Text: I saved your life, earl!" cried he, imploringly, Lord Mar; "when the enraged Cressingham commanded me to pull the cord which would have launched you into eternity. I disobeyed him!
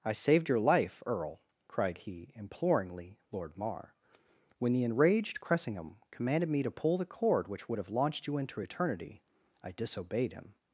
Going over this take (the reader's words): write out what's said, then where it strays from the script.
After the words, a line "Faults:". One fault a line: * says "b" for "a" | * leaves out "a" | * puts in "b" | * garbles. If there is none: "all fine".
I saved your life, earl!" cried he, imploringly, Lord Mar; "when the enraged Cressingham commanded me to pull the cord which would have launched you into eternity. I disobeyed him!
Faults:
all fine